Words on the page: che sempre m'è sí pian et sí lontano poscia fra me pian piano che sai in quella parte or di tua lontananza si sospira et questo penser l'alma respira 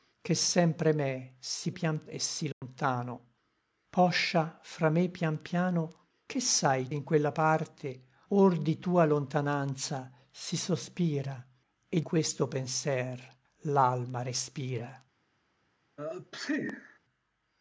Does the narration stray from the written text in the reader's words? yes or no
no